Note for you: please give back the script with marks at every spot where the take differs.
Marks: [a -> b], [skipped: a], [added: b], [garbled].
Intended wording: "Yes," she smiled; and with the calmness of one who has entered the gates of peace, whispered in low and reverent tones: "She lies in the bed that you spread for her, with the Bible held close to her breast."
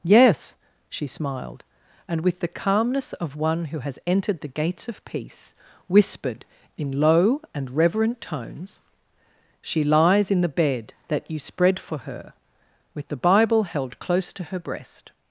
"Yes," she smiled; and with the calmness of one who has entered the gates of peace, whispered in low and reverent tones: "She lies in the bed that you spread for her, with the Bible held close to her breast."